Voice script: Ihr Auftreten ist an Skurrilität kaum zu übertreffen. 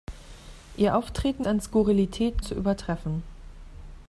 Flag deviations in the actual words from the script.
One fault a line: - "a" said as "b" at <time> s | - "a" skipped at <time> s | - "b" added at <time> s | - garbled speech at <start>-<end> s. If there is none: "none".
- "ist" skipped at 1.4 s
- "kaum" skipped at 2.4 s